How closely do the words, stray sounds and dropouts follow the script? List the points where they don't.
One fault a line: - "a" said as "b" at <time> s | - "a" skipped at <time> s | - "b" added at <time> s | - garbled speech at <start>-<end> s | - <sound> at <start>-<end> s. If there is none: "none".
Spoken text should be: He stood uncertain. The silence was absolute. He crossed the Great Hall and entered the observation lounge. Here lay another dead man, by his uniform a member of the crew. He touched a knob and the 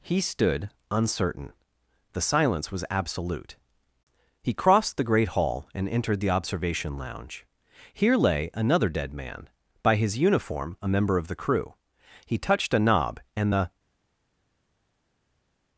none